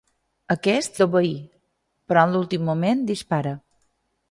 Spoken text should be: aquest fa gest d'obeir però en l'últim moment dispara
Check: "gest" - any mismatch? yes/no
yes